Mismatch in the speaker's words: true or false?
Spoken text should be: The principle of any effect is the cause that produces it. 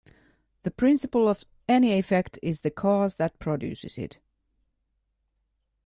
false